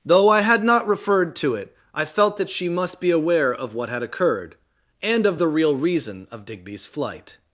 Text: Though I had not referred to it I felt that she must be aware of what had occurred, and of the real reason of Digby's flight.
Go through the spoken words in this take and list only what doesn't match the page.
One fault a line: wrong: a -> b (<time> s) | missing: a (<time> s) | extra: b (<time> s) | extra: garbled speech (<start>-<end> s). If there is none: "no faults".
no faults